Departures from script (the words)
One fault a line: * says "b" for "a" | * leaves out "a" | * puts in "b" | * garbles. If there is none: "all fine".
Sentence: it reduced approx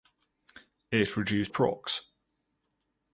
all fine